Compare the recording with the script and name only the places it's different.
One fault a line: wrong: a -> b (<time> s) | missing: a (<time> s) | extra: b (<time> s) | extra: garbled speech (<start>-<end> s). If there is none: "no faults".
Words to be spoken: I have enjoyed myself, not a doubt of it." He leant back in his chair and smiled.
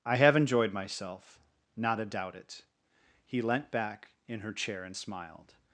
missing: of (2.4 s)
wrong: his -> her (4.4 s)